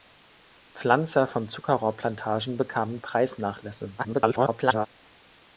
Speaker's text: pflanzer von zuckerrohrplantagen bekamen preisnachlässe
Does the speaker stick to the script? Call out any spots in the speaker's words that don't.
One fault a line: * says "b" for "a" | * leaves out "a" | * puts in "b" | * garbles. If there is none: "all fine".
* garbles